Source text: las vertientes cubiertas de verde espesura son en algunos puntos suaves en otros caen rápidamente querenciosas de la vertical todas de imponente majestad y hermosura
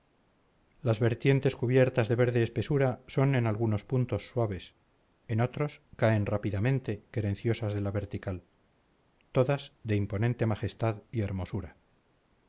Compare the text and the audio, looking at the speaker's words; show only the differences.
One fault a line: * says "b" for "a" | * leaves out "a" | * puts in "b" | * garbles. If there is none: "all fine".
all fine